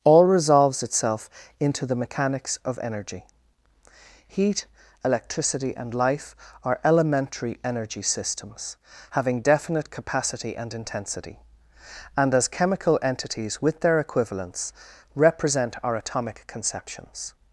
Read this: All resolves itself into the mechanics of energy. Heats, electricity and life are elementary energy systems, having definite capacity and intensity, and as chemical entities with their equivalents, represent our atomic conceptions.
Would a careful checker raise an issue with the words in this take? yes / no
yes